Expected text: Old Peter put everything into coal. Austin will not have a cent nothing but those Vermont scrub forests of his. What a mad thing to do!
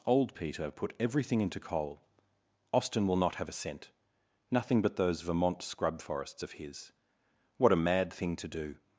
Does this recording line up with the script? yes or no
yes